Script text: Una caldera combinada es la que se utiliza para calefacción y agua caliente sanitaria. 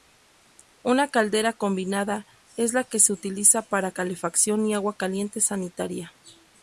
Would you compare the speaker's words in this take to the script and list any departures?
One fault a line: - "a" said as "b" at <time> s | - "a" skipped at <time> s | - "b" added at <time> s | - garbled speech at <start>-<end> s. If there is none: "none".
none